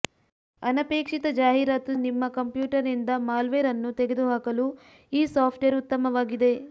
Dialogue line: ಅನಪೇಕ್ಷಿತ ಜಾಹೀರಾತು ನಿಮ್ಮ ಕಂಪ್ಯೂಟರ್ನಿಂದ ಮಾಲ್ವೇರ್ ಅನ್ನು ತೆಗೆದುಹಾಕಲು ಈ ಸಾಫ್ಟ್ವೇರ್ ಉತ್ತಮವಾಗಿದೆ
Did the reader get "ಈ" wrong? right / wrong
right